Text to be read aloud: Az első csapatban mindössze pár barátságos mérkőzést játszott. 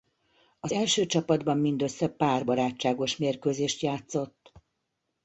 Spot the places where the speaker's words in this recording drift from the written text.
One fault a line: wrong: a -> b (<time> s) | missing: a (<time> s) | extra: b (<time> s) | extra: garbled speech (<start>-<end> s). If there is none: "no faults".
no faults